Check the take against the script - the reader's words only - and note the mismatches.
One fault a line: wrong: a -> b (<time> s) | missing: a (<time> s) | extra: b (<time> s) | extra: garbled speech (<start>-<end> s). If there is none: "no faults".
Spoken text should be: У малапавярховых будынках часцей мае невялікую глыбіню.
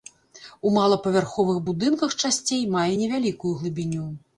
no faults